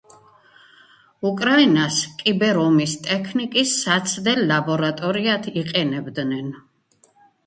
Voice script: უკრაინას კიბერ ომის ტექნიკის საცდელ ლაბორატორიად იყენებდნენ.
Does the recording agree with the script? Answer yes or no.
yes